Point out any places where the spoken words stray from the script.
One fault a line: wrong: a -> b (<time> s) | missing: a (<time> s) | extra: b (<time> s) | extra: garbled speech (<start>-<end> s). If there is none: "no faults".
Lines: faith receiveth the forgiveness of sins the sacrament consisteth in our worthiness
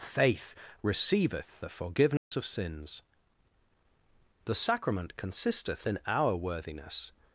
no faults